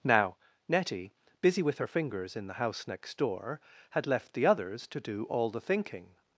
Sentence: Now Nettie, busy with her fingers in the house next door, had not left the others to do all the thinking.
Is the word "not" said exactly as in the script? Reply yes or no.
no